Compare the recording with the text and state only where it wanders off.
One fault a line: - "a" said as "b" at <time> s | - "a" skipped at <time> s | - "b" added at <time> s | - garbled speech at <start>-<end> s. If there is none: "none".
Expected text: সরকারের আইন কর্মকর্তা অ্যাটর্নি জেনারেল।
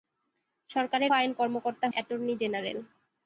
none